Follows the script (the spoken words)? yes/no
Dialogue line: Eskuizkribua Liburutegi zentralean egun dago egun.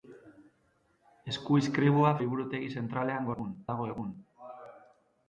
yes